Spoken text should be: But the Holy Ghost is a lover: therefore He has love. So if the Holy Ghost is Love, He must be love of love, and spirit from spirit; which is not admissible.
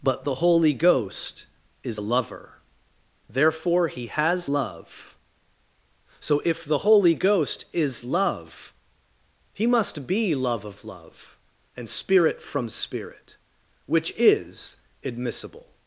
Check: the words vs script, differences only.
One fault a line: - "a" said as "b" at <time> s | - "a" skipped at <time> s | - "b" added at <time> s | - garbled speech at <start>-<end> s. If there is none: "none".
- "not" skipped at 14.8 s